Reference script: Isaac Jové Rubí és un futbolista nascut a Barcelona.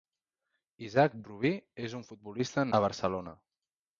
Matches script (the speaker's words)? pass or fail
fail